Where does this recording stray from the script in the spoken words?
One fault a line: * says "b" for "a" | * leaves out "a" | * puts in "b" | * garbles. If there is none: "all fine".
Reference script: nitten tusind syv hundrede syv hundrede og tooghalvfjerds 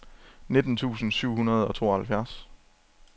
* leaves out "syv hundrede"